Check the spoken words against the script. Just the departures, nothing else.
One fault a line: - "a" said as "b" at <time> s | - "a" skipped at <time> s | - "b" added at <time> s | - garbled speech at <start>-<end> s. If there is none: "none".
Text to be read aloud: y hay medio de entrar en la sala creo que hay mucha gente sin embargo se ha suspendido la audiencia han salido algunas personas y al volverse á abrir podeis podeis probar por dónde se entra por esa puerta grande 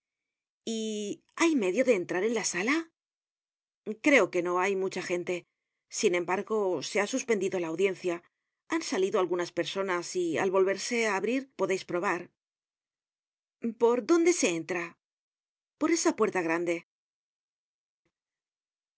- "no" added at 4.4 s
- "podeis" skipped at 11.8 s